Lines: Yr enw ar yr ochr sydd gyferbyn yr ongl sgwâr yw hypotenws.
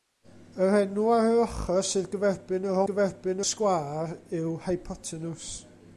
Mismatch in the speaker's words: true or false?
true